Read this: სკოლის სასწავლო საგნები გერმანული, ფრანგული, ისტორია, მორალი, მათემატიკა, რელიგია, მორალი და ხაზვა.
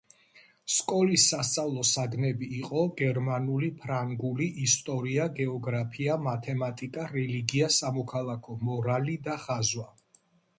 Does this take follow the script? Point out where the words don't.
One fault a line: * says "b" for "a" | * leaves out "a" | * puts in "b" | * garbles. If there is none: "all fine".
* puts in "იყო"
* says "გეოგრაფია" for "მორალი"
* puts in "სამოქალაქო"